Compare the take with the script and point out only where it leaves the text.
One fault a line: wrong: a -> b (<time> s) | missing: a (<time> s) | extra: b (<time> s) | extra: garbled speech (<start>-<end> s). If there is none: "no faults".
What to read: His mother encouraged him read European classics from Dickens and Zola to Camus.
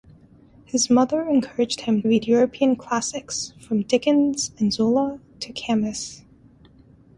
no faults